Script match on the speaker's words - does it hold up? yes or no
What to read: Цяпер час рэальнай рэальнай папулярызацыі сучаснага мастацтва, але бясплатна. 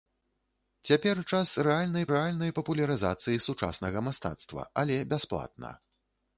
yes